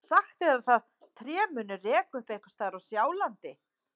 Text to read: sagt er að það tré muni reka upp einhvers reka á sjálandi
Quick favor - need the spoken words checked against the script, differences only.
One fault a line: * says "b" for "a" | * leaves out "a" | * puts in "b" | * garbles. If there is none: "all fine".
* says "staðar" for "reka"